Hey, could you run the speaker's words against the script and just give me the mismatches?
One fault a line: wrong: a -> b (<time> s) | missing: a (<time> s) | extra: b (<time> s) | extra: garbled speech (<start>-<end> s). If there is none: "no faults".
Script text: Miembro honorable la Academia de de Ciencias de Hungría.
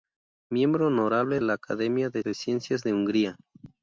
no faults